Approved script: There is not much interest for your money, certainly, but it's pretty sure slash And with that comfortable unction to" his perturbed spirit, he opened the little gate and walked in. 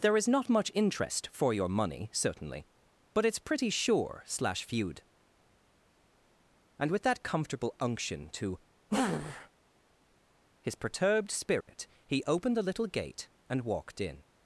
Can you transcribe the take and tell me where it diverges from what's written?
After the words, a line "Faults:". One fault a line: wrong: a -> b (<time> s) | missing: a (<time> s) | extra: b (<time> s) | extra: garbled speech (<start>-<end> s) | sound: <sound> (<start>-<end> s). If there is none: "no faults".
There is not much interest for your money, certainly, but it's pretty sure slash feud And with that comfortable unction to" his perturbed spirit, he opened the little gate and walked in.
Faults:
extra: feud (4.6 s)
sound: dropout (11.6-11.7 s)